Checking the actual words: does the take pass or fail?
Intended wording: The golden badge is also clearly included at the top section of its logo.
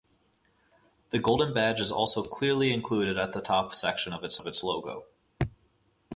fail